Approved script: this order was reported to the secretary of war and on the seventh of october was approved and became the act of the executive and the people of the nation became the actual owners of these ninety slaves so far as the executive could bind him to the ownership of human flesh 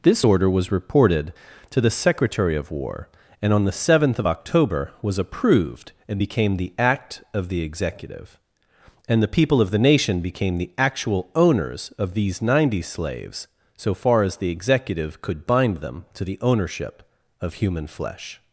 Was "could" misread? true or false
false